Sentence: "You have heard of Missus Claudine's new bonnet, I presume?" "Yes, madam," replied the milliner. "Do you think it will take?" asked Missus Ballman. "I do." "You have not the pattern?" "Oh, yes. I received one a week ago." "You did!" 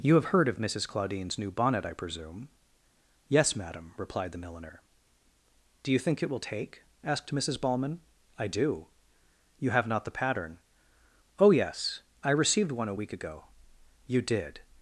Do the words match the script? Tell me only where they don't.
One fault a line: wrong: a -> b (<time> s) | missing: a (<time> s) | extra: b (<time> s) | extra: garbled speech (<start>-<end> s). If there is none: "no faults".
no faults